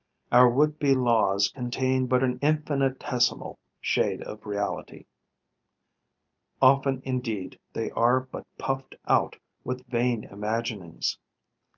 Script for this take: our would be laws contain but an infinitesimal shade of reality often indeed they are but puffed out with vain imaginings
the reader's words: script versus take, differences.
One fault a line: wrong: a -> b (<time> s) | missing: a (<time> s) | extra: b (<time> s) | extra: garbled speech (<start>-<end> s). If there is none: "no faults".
no faults